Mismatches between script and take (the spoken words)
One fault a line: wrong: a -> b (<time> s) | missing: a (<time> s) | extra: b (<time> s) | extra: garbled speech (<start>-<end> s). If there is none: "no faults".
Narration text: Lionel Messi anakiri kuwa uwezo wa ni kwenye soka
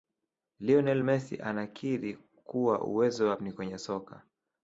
no faults